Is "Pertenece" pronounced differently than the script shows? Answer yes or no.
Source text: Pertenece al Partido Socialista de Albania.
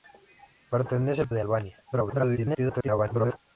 no